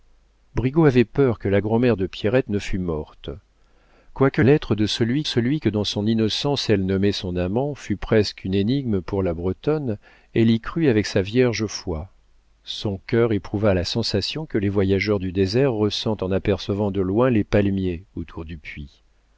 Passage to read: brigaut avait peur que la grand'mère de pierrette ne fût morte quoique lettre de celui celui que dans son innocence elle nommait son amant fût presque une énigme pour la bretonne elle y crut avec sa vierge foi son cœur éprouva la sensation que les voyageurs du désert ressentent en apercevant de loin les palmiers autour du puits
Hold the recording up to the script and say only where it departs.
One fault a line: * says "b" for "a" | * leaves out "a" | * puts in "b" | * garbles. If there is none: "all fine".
all fine